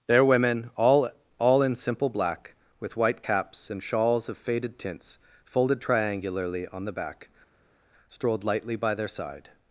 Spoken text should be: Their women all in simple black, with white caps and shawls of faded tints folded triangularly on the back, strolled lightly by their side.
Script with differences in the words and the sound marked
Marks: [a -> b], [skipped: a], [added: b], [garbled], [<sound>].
Their women all [added: all] in simple black, with white caps and shawls of faded tints folded triangularly on the back, strolled lightly by their side.